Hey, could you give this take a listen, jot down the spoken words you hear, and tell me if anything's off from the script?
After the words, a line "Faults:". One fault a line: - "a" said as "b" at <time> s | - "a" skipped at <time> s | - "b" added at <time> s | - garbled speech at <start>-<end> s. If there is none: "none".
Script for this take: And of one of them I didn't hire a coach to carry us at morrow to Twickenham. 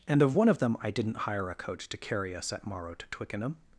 And of one of them I didn't hire a coach to carry us at morrow to Twickenham.
Faults:
none